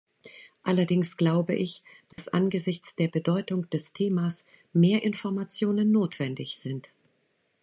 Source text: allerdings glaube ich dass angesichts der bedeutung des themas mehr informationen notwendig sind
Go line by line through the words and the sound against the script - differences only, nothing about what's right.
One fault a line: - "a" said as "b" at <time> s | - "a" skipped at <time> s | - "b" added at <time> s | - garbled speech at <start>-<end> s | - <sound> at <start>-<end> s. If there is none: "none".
- dropout at 2.1-2.2 s